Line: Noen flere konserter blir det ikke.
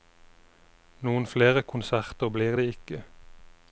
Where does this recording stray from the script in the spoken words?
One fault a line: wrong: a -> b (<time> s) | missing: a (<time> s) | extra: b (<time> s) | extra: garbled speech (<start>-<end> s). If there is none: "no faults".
no faults